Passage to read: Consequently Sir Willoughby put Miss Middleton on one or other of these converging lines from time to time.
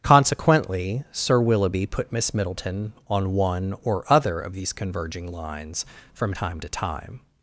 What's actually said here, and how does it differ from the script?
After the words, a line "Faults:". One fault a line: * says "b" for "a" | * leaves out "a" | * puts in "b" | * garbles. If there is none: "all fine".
Consequently Sir Willoughby put Miss Middleton on one or other of these converging lines from time to time.
Faults:
all fine